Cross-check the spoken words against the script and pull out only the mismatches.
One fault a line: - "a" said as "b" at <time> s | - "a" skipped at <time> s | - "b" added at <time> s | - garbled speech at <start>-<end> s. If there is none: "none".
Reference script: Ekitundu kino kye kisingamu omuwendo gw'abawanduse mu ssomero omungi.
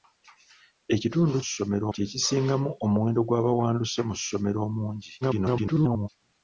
- "kino" said as "ssomero" at 1.5 s
- garbled speech at 5.2-6.1 s